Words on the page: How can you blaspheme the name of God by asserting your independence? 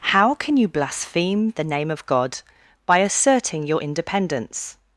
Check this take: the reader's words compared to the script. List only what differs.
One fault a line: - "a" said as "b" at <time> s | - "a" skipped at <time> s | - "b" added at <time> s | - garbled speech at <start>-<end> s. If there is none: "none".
none